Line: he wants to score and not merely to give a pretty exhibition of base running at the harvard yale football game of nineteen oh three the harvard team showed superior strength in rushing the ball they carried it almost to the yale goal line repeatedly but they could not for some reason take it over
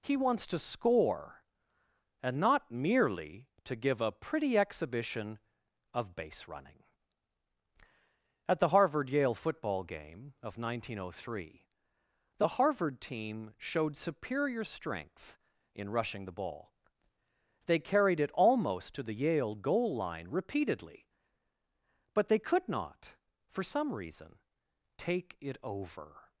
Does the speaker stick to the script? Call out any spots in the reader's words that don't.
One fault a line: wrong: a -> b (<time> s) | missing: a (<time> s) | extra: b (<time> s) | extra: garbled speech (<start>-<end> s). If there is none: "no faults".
no faults